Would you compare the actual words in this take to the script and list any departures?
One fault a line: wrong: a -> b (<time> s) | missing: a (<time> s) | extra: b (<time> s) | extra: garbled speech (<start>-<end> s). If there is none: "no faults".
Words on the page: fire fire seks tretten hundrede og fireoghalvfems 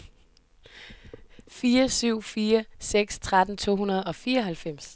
extra: syv (1.9 s)
extra: to (3.6 s)